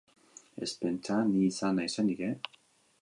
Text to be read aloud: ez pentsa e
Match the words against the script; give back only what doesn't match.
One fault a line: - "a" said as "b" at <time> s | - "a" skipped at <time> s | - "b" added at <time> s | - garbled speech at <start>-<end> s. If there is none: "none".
- "ni izan naizenik" added at 1.3 s